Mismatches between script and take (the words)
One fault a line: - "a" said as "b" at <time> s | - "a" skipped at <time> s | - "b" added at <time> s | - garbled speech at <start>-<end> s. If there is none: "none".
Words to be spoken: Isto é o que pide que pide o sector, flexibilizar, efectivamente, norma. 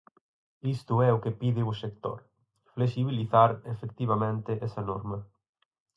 - "que pide" skipped at 1.6 s
- "esa" added at 4.7 s